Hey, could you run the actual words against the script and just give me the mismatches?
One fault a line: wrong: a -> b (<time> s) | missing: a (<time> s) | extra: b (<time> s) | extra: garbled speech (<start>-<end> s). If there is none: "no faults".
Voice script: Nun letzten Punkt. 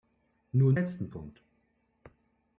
no faults